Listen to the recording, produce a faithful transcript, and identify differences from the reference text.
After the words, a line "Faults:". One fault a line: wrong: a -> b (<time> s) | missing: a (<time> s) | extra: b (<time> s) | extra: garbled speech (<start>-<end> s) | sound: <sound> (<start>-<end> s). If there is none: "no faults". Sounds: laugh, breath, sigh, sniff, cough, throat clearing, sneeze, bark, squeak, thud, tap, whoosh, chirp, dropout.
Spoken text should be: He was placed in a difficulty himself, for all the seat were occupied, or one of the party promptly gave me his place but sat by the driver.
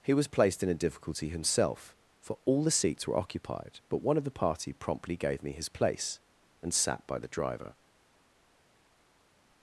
He was placed in a difficulty himself, for all the seats were occupied, but one of the party promptly gave me his place and sat by the driver.
Faults:
wrong: seat -> seats (2.7 s)
wrong: or -> but (3.9 s)
wrong: but -> and (6.6 s)